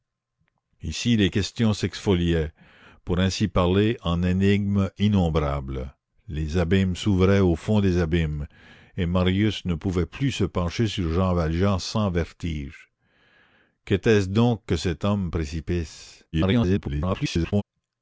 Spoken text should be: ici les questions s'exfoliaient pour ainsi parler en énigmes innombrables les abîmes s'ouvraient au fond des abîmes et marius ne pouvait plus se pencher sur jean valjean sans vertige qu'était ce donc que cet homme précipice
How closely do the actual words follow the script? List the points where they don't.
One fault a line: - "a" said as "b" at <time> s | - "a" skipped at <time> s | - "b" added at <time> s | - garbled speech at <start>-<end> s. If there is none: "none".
- garbled speech at 16.3-17.6 s